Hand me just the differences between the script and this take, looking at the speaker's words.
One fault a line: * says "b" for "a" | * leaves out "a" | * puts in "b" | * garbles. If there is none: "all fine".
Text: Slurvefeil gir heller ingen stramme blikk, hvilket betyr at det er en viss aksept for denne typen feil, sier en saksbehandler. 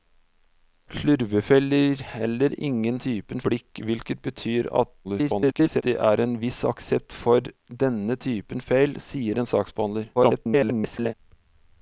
* says "typen" for "stramme"
* garbles
* garbles